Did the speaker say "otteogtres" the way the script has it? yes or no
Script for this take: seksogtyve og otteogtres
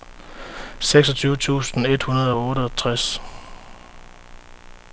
yes